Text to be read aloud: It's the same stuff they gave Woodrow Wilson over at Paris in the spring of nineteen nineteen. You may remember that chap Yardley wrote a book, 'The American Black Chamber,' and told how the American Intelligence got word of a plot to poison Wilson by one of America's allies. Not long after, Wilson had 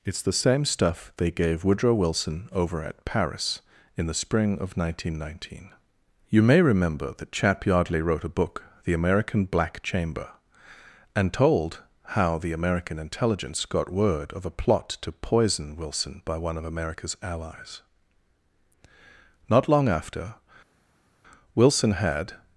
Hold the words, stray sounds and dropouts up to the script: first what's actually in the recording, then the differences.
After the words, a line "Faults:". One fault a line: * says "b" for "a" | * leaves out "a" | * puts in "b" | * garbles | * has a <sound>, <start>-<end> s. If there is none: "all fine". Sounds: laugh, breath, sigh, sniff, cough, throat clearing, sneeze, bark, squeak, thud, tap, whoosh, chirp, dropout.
It's the same stuff they gave Woodrow Wilson over at Paris in the spring of nineteen nineteen. You may remember that chap Yardley wrote a book, 'The American Black Chamber,' and told how the American Intelligence got word of a plot to poison Wilson by one of America's allies. Not long after, Wilson had
Faults:
all fine